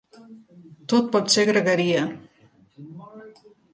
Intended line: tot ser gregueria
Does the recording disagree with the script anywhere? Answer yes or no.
yes